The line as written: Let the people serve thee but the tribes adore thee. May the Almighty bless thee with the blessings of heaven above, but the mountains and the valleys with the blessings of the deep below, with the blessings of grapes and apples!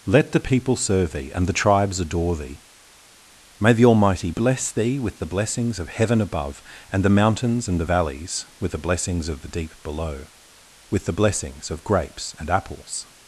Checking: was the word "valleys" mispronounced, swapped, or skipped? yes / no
no